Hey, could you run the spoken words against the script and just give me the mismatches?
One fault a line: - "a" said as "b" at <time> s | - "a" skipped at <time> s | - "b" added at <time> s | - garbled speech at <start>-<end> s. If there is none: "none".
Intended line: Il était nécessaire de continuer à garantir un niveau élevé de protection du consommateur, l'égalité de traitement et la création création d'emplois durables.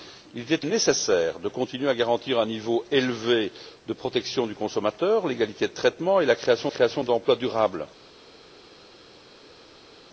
none